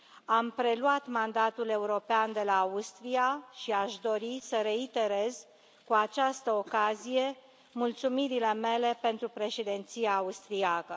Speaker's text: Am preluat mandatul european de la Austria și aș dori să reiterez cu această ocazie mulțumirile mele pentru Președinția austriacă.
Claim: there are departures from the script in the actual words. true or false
false